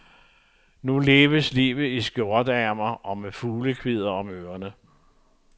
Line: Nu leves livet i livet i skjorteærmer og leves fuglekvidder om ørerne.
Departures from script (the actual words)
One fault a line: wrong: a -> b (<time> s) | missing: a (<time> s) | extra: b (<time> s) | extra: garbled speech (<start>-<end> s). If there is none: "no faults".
missing: livet i (2.0 s)
wrong: leves -> med (3.2 s)